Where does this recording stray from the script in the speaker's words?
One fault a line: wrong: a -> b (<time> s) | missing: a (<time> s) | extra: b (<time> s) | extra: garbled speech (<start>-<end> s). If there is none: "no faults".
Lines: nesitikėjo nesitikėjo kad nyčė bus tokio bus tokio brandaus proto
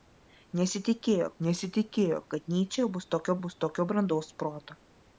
no faults